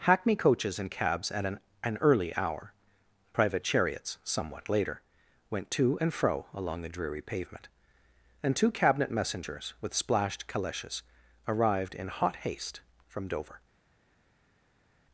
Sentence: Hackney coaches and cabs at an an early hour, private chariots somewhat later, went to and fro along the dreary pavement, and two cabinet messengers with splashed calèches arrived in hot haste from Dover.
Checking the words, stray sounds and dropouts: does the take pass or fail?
pass